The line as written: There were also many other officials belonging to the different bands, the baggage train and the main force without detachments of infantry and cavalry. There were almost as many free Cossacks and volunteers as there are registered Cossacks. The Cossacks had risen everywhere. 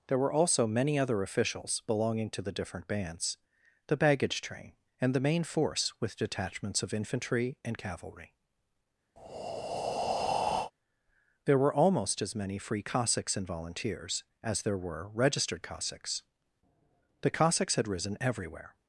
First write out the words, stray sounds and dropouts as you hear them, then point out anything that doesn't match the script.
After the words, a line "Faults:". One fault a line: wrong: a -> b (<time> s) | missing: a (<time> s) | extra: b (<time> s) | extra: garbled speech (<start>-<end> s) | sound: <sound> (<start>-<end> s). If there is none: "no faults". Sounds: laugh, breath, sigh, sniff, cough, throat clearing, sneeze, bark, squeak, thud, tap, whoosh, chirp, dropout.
There were also many other officials belonging to the different bands, the baggage train and the main force with detachments of infantry and cavalry. There were almost as many free Cossacks and volunteers as there were registered Cossacks. The Cossacks had risen everywhere.
Faults:
wrong: without -> with (6.0 s)
sound: breath (9.2-10.7 s)
wrong: are -> were (14.8 s)